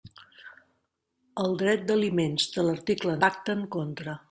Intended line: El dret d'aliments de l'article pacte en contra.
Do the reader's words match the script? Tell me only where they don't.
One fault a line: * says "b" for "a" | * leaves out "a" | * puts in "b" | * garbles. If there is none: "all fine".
all fine